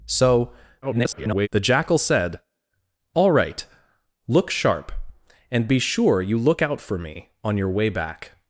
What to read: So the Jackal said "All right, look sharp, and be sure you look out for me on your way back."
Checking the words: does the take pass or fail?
fail